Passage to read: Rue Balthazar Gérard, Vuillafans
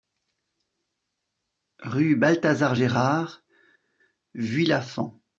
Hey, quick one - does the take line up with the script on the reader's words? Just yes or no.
yes